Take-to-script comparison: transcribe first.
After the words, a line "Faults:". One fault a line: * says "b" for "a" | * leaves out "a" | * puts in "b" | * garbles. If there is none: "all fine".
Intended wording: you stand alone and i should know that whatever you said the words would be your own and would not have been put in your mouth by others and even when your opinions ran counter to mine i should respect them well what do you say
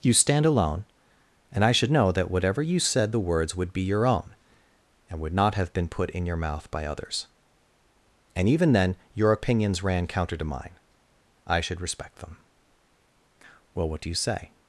you stand alone and i should know that whatever you said the words would be your own and would not have been put in your mouth by others and even then your opinions ran counter to mine i should respect them well what do you say
Faults:
* says "then" for "when"